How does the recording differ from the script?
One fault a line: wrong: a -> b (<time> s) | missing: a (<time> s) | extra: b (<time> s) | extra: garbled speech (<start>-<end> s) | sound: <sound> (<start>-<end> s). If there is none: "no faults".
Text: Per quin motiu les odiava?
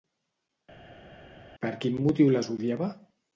no faults